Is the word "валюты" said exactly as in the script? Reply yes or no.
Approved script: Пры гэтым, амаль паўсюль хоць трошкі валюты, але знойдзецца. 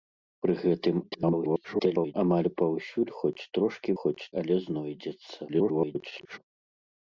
no